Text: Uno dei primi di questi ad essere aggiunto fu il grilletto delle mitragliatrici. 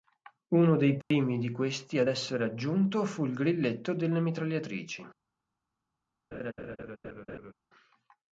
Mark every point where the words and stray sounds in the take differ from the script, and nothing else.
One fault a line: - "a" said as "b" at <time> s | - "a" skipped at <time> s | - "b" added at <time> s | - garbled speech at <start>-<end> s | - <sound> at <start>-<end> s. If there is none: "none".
- dropout at 1.0-1.1 s
- laugh at 6.3-7.5 s